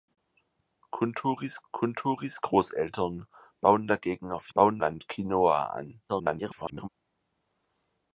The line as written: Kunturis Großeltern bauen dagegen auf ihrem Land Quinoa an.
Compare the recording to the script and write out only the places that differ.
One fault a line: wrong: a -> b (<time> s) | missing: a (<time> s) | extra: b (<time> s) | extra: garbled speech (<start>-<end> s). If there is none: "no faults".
extra: kunturis (1.7 s)
wrong: ihrem -> bauen (4.5 s)
extra: garbled speech (6.1-6.9 s)